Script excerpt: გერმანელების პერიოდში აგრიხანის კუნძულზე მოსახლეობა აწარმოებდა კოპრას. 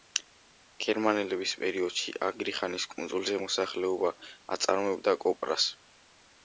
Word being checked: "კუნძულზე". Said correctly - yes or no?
yes